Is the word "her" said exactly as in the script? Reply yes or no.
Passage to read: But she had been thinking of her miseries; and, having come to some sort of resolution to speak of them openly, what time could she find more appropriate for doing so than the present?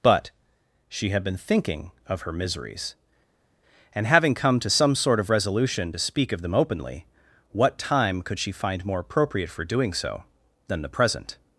yes